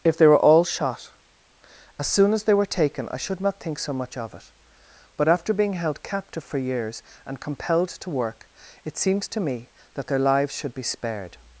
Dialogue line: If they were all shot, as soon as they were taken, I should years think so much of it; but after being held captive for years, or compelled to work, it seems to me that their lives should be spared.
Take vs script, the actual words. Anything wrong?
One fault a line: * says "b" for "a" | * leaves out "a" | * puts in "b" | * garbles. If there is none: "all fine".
* says "not" for "years"
* says "and" for "or"